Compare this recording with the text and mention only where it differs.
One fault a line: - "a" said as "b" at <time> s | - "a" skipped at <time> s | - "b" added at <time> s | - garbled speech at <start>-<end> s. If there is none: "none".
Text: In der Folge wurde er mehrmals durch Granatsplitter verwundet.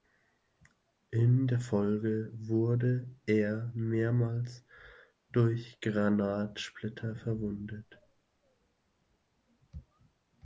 none